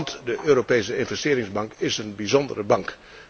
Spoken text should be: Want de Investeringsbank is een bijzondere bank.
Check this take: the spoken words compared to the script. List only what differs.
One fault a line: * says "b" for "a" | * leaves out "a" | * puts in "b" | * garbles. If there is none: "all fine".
* puts in "Europese"